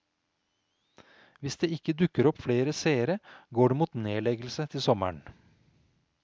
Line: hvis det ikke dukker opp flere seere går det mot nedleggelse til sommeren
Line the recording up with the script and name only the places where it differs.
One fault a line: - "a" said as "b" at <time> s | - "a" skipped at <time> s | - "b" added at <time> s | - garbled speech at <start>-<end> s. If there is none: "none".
none